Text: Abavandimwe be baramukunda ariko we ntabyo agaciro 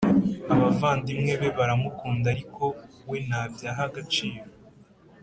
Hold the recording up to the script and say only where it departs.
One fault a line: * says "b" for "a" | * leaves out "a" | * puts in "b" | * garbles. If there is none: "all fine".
* puts in "aha"